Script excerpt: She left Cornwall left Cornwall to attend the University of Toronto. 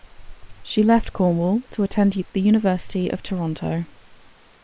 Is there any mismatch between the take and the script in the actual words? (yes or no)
yes